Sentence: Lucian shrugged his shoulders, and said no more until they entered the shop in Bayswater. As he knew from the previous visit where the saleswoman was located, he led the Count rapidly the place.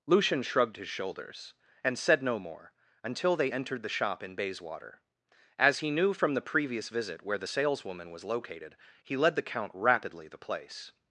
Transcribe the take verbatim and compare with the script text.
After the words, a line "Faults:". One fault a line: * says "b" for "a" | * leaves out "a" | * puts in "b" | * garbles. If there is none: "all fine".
Lucian shrugged his shoulders, and said no more until they entered the shop in Bayswater. As he knew from the previous visit where the saleswoman was located, he led the Count rapidly the place.
Faults:
all fine